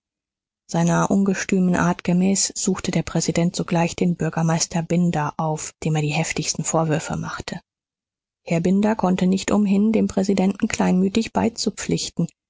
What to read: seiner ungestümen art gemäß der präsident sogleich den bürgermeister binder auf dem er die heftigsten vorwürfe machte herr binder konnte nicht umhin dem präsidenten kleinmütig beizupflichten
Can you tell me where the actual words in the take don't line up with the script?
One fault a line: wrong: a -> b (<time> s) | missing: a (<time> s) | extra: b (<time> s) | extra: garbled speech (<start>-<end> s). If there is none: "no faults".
extra: suchte (2.5 s)